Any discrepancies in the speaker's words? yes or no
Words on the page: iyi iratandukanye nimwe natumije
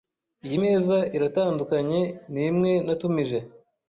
yes